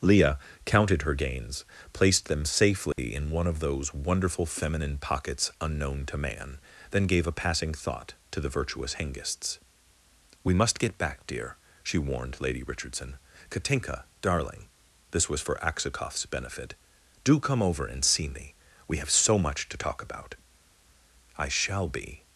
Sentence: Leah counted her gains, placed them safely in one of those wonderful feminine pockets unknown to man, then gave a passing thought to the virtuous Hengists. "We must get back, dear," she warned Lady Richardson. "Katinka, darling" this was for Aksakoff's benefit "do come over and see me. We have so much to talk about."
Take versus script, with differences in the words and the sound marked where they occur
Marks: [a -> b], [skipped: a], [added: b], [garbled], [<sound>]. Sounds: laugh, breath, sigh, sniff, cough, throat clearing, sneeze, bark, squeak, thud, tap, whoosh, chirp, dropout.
Leah counted her gains, placed them safely [dropout] in one of those wonderful feminine pockets unknown to man, then gave a passing thought to the virtuous Hengists. "We must get back, dear," she warned Lady Richardson. "Katinka, darling" this was for Aksakoff's benefit "do come over and see me. We have so much to talk about." [added: I shall be]